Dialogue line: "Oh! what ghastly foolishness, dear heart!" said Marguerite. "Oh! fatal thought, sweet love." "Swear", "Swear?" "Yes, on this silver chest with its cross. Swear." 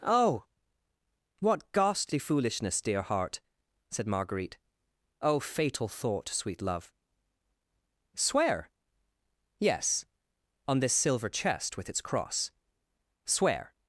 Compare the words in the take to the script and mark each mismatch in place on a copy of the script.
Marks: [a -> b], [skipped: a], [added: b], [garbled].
"Oh! what ghastly foolishness, dear heart!" said Marguerite. "Oh! fatal thought, sweet love." "Swear", [skipped: "Swear?"] "Yes, on this silver chest with its cross. Swear."